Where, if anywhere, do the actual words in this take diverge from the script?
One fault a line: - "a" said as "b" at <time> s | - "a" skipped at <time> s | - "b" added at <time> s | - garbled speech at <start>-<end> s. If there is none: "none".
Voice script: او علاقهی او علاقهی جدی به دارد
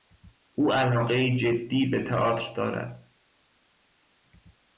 - "او علاقهی" skipped at 1.4 s
- "تئاتر" added at 2.0 s